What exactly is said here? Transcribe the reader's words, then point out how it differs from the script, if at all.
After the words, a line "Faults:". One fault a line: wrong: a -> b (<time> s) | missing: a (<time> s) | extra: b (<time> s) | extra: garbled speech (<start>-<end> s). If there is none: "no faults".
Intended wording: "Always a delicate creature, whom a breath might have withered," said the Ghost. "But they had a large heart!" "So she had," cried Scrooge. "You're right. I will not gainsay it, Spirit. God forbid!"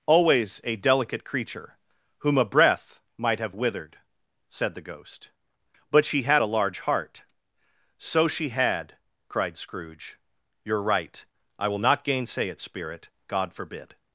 "Always a delicate creature, whom a breath might have withered," said the Ghost. "But she had a large heart!" "So she had," cried Scrooge. "You're right. I will not gainsay it, Spirit. God forbid!"
Faults:
wrong: they -> she (6.0 s)